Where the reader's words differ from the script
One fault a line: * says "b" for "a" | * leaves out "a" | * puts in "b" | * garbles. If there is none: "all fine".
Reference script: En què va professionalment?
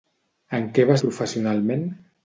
all fine